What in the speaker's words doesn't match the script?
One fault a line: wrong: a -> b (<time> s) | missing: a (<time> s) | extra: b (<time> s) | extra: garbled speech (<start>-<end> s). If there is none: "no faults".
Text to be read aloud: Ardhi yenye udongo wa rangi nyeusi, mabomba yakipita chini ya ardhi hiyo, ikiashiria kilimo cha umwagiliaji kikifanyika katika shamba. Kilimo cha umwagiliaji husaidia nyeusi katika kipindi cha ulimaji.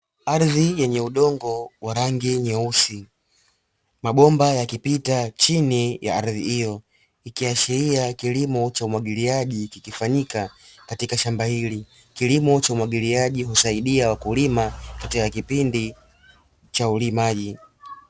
extra: hili (11.4 s)
wrong: nyeusi -> wakulima (14.1 s)